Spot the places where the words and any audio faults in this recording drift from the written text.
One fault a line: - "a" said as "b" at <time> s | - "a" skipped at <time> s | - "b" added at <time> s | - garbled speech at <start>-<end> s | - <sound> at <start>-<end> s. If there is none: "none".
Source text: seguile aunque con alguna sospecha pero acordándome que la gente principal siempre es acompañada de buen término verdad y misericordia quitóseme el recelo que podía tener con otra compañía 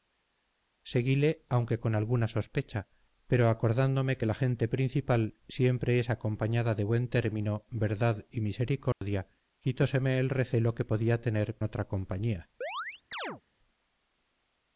- dropout at 8.9-9.0 s
- "con" skipped at 11.6 s
- chirp at 12.6-13.4 s